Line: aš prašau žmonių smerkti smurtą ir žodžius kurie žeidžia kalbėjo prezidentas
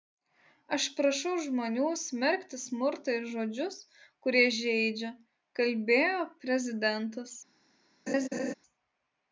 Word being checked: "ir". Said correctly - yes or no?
yes